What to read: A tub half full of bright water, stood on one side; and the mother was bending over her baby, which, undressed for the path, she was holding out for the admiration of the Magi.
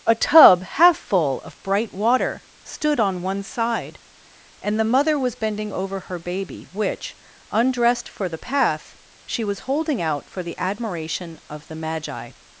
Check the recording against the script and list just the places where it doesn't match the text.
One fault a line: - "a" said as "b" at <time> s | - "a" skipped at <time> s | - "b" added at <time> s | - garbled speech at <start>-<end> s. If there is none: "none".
none